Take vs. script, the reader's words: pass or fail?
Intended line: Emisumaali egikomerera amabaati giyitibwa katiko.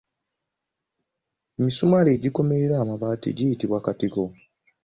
pass